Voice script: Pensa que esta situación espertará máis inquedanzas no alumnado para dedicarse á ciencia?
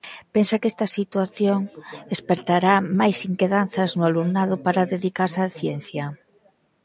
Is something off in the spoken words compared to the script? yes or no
no